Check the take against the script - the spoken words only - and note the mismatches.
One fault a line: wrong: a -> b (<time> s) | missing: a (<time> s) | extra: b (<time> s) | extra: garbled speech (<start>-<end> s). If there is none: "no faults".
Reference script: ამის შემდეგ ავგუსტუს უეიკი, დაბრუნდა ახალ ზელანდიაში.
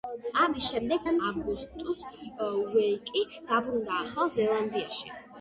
no faults